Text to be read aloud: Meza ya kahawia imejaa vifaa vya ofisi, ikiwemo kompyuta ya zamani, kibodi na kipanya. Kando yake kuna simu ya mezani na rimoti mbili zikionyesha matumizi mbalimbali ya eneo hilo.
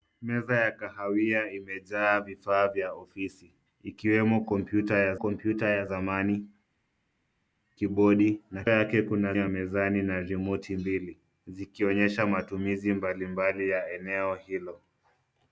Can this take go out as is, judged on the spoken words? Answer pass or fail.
fail